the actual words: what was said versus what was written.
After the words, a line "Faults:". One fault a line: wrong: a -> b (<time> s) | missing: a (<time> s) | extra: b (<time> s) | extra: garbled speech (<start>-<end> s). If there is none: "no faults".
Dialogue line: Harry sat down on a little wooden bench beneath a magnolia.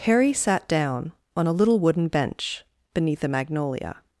Harry sat down on a little wooden bench beneath a magnolia.
Faults:
no faults